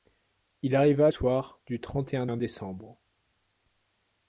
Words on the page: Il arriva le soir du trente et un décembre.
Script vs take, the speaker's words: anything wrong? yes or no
yes